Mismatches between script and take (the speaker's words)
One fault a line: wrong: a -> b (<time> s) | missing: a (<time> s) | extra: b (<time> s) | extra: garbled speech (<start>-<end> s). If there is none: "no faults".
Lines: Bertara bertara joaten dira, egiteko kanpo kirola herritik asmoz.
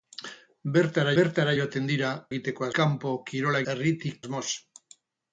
no faults